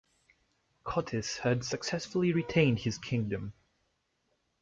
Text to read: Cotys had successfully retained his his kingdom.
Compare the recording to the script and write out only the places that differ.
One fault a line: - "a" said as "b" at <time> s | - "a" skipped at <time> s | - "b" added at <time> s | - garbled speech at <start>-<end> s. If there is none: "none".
- "his" skipped at 3.0 s